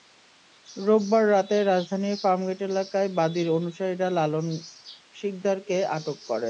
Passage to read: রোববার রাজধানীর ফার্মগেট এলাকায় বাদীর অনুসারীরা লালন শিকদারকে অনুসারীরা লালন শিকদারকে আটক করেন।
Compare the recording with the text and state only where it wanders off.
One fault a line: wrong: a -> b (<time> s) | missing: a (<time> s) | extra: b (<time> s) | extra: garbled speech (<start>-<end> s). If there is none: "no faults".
extra: রাতে (1.3 s)
missing: অনুসারীরা লালন শিকদারকে (5.8 s)